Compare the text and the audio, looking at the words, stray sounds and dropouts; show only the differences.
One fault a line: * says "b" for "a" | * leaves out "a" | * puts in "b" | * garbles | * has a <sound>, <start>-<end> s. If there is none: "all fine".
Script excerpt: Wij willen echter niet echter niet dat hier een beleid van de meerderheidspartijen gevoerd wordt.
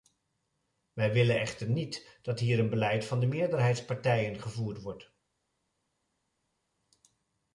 * leaves out "echter niet"